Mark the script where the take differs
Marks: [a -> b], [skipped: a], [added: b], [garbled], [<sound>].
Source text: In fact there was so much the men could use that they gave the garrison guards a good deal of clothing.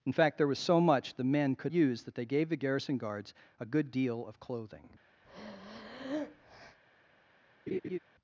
In fact there was so much the men could use that they gave the garrison guards a good deal of clothing. [breath] [laugh]